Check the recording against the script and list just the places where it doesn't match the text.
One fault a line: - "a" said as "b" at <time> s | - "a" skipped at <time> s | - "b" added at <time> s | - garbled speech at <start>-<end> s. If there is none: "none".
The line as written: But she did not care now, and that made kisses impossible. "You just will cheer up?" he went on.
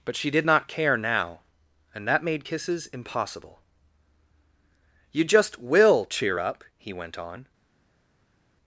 none